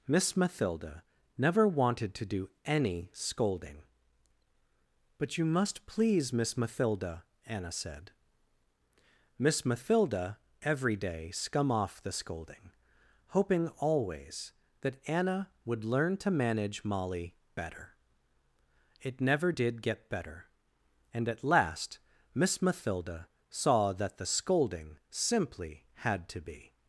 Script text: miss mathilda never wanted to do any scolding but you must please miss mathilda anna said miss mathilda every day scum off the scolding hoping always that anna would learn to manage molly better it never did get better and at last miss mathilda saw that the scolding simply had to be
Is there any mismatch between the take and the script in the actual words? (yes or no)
no